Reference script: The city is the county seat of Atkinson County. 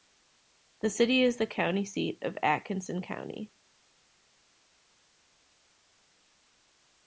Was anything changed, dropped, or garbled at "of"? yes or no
no